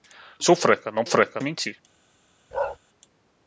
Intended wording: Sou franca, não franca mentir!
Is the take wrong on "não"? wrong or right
right